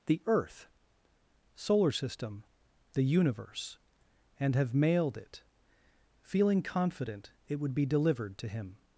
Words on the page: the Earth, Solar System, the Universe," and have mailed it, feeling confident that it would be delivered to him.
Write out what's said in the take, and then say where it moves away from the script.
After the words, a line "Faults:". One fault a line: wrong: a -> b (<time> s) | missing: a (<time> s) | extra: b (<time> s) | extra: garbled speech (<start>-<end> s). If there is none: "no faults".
the Earth, Solar System, the Universe," and have mailed it, feeling confident it would be delivered to him.
Faults:
missing: that (7.3 s)